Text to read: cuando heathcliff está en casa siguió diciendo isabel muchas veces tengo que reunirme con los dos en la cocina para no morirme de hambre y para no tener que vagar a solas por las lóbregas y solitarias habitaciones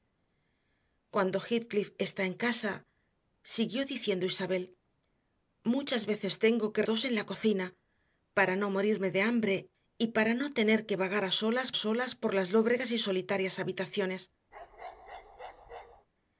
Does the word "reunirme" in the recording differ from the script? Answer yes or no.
yes